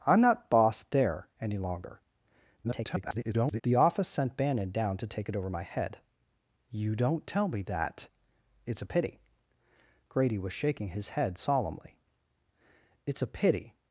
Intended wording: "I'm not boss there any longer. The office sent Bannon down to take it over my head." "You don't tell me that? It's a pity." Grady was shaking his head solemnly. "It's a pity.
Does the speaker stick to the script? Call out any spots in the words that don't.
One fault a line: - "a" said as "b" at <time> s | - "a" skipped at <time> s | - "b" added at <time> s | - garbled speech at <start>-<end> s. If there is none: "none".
- garbled speech at 2.6-3.6 s